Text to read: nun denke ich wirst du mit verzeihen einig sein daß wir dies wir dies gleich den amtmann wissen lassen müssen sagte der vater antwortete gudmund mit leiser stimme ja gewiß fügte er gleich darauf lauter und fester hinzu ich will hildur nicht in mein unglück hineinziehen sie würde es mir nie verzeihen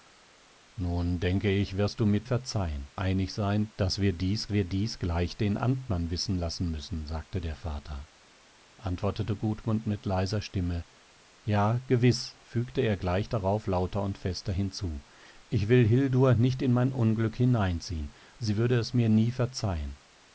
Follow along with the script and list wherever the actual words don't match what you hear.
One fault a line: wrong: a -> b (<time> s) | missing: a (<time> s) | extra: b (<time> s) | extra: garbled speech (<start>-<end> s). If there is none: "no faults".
no faults